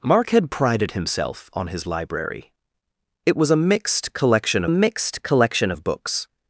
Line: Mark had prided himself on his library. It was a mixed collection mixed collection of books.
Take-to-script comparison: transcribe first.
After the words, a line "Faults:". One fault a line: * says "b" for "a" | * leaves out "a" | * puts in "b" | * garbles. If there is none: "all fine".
Mark had prided himself on his library. It was a mixed collection mixed collection of books.
Faults:
all fine